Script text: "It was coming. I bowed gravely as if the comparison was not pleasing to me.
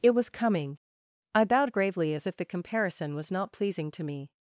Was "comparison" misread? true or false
false